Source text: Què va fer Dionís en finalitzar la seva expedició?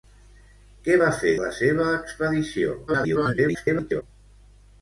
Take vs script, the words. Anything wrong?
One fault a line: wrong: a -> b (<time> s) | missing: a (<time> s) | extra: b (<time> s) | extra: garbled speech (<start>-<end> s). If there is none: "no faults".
missing: Dionís en finalitzar (1.3 s)
extra: garbled speech (2.9-4.0 s)